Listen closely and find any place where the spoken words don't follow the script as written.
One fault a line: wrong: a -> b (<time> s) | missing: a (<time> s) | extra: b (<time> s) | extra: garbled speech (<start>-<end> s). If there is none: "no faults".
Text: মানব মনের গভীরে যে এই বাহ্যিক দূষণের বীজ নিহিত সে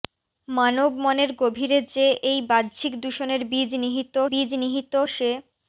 extra: বীজ নিহিত (4.3 s)